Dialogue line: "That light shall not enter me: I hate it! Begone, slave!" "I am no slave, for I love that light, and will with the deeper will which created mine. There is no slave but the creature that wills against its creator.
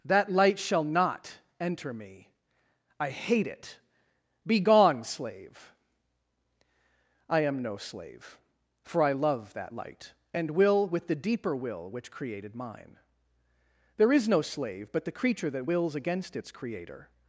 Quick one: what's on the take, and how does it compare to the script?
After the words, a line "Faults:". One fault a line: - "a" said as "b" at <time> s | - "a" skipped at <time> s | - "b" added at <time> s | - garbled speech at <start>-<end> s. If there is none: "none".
"That light shall not enter me: I hate it! Begone, slave!" "I am no slave, for I love that light, and will with the deeper will which created mine. There is no slave but the creature that wills against its creator.
Faults:
none